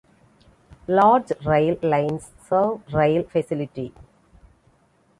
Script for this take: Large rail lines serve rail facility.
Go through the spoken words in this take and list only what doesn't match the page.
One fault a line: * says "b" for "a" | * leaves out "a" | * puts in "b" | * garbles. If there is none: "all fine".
all fine